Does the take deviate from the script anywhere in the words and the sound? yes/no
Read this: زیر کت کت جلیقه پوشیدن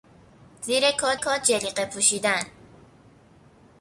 no